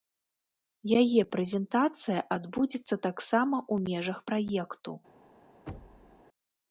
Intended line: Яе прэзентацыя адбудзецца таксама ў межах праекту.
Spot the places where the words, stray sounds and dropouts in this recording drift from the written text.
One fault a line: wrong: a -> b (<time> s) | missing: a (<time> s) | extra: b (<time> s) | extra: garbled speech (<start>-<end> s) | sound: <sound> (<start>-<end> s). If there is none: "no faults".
sound: thud (5.7-6.2 s)